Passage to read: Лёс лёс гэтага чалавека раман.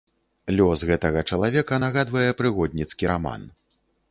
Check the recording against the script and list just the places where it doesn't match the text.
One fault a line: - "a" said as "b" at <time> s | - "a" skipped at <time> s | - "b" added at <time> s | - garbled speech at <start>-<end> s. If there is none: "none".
- "лёс" skipped at 0.8 s
- "нагадвае прыгодніцкі" added at 1.8 s